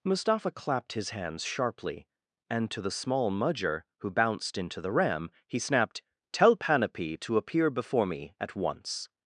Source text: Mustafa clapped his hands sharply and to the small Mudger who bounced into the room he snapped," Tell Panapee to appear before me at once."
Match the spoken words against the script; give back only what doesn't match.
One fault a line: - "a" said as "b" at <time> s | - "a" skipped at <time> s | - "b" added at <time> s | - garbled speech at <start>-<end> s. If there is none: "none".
- "room" said as "ram" at 4.9 s